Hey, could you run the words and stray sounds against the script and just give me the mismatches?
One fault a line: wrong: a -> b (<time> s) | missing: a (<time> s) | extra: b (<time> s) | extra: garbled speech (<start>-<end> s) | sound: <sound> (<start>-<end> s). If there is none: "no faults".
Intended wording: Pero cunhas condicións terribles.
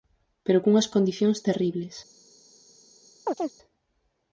sound: chirp (3.3-3.5 s)